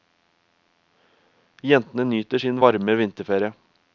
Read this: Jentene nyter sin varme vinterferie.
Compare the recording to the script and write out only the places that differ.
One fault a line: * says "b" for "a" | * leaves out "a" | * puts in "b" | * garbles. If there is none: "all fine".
all fine